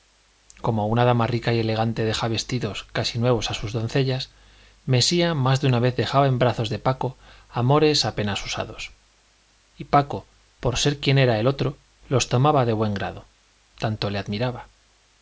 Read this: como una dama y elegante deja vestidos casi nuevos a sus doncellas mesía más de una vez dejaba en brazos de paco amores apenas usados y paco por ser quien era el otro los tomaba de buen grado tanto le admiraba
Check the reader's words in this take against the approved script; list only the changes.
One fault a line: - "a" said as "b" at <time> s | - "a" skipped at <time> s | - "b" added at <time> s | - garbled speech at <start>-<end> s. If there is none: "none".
- "rica" added at 1.3 s